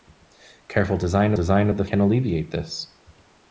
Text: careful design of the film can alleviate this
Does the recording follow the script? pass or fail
fail